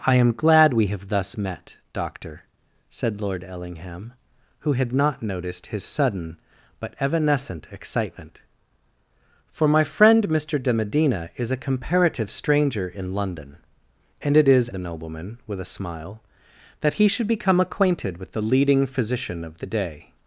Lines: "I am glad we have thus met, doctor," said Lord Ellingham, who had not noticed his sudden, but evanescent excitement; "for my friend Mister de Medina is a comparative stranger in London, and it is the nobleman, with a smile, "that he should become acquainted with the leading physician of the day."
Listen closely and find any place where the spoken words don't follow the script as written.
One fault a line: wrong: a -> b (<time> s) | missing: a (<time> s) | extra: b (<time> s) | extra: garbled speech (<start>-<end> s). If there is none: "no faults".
no faults